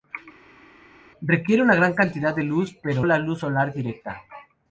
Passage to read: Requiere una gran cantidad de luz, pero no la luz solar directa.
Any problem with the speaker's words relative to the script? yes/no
yes